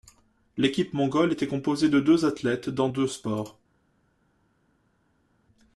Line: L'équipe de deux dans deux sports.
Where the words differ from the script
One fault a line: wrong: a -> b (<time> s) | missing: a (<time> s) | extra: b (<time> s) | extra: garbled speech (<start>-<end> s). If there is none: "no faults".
extra: mongole était composée (0.9 s)
extra: athlètes (2.2 s)